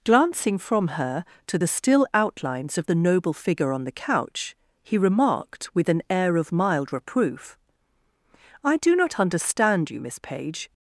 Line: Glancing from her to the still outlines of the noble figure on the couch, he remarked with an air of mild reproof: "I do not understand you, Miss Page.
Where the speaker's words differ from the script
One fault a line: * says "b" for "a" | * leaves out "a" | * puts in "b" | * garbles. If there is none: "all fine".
all fine